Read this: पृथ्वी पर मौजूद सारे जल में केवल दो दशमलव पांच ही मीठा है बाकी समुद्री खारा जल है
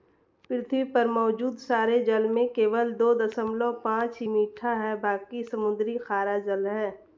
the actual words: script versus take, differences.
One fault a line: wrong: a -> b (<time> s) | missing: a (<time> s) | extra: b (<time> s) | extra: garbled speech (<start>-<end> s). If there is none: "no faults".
no faults